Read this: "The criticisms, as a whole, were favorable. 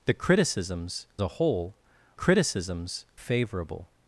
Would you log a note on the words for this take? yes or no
yes